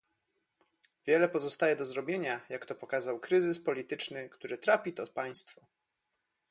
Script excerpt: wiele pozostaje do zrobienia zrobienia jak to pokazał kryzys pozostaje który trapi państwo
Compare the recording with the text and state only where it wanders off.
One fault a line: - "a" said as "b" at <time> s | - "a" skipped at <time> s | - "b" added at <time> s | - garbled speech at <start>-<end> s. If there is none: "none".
- "zrobienia" skipped at 2.4 s
- "pozostaje" said as "polityczny" at 3.6 s
- "to" added at 4.9 s